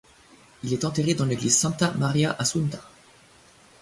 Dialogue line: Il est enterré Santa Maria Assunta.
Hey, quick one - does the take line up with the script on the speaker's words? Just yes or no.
no